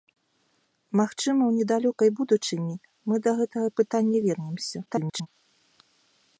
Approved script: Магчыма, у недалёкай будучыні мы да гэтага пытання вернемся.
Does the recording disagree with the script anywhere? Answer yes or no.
yes